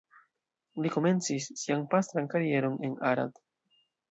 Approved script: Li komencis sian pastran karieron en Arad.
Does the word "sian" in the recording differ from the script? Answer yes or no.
no